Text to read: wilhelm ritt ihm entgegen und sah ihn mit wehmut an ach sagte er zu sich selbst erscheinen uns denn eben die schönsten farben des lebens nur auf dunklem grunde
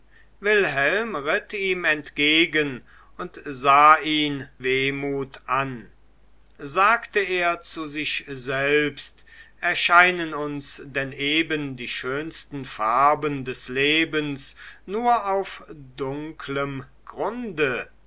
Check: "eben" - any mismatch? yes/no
no